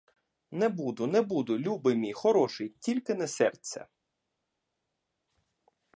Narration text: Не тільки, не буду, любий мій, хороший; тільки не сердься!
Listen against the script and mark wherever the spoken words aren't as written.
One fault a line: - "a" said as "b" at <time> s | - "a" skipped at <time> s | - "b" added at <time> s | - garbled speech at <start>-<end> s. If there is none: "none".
- "тільки" said as "буду" at 0.7 s